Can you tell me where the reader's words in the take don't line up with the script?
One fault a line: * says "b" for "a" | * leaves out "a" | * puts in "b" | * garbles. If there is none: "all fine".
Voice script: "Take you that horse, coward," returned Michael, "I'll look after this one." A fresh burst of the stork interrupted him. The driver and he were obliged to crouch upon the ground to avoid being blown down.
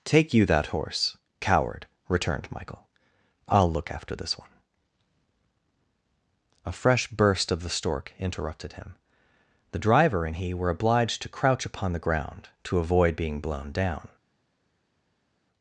all fine